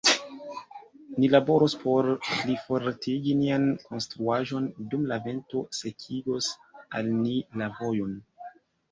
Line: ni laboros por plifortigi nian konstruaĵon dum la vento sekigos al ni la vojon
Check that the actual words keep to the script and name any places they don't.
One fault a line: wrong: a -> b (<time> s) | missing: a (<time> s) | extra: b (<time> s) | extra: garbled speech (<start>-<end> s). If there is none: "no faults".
no faults